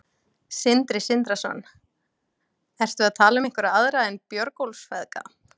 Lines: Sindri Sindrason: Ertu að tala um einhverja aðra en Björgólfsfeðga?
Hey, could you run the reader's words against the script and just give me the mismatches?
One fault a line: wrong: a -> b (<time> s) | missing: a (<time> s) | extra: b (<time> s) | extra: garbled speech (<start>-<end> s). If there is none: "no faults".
no faults